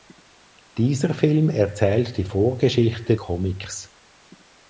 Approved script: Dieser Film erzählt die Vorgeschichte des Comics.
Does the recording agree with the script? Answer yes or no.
no